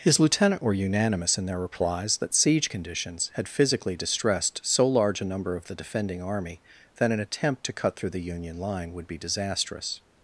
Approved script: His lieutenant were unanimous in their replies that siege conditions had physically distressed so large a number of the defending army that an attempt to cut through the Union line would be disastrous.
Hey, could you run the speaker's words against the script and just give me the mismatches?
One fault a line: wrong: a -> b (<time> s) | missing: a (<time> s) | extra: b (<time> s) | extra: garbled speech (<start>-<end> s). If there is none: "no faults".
no faults